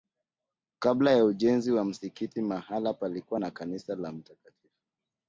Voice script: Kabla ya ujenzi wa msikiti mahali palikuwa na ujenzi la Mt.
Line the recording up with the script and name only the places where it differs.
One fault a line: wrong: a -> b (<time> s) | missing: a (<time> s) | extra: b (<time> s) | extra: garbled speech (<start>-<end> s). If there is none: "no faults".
wrong: ujenzi -> kanisa (3.5 s)